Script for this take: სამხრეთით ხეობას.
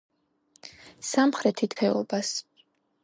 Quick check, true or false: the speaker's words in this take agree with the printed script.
true